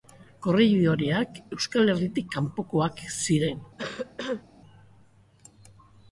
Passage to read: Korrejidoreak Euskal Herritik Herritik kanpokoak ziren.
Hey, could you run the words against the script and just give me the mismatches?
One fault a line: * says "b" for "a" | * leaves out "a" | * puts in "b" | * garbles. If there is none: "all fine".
* leaves out "Herritik"